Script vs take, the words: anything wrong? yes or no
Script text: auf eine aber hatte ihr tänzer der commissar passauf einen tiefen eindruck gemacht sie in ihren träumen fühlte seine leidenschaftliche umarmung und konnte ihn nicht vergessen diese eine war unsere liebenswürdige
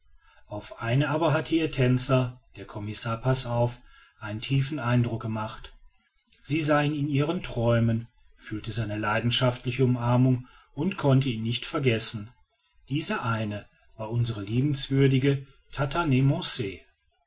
yes